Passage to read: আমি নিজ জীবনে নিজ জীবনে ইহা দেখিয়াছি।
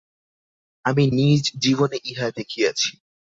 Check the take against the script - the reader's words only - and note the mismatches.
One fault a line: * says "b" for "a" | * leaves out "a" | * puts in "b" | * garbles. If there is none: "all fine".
* leaves out "নিজ জীবনে"